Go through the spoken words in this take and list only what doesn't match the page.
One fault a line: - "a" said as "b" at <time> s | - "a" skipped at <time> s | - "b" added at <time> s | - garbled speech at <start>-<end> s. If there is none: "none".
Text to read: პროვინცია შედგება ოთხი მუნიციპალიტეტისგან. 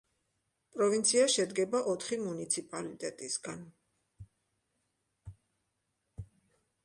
none